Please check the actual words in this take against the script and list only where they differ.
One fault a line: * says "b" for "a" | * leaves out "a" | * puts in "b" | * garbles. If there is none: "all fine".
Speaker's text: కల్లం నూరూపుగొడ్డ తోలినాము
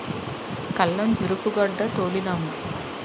all fine